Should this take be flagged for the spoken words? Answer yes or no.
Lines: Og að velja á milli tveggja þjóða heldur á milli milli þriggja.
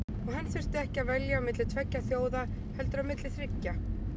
yes